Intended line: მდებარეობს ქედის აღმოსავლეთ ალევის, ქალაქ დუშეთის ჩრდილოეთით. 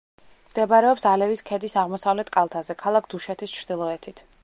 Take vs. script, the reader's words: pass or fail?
fail